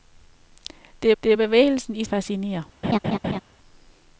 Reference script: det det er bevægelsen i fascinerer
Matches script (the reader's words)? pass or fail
pass